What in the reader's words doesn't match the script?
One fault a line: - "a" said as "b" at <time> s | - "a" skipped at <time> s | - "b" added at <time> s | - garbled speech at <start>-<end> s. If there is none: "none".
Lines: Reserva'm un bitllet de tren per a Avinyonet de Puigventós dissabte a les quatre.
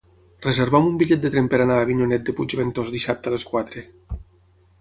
- "anar" added at 1.6 s